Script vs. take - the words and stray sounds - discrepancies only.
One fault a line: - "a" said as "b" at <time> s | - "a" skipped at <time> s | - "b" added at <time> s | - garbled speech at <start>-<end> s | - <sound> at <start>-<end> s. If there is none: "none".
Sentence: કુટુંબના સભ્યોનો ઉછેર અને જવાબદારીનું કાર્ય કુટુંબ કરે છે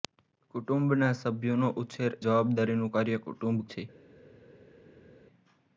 - "અને" skipped at 2.1 s
- "કરે" skipped at 3.6 s